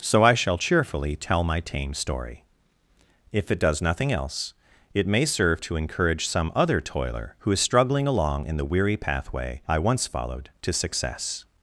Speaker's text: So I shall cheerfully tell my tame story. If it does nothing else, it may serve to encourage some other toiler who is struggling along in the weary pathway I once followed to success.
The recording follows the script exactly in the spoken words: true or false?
true